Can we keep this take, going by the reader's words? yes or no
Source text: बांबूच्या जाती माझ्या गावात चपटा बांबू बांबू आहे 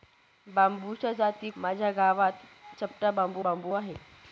yes